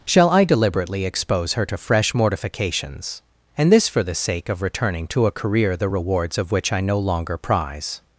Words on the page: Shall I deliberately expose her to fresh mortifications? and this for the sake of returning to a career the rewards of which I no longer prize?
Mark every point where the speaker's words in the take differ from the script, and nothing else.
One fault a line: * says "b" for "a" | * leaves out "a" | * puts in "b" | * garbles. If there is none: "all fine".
all fine